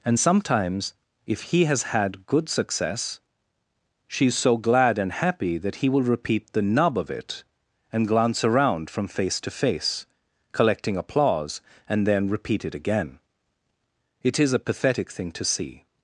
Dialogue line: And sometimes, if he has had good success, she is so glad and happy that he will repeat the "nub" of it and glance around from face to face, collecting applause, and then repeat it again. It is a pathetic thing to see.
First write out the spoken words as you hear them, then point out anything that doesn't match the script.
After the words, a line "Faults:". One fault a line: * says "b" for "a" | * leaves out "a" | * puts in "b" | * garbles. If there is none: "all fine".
And sometimes, if he has had good success, she is so glad and happy that he will repeat the "nub" of it and glance around from face to face, collecting applause, and then repeat it again. It is a pathetic thing to see.
Faults:
all fine